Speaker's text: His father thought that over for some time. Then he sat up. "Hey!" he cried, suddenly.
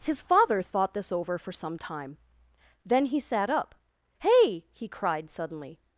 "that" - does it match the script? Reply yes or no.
no